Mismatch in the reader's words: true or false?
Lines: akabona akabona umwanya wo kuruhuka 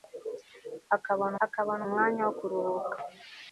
false